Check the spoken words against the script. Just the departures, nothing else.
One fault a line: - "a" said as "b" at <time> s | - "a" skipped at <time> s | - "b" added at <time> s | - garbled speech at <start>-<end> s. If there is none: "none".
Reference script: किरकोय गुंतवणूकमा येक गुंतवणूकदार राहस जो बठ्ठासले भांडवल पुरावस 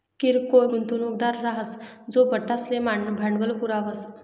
- "गुंतवणूकमा येक" skipped at 0.7 s